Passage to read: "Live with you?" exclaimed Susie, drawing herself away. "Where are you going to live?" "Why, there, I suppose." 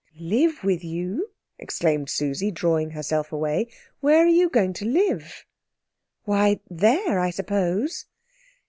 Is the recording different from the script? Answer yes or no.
no